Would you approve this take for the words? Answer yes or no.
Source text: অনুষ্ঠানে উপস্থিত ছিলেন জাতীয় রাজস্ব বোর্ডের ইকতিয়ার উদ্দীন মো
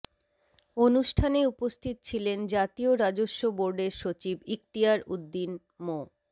no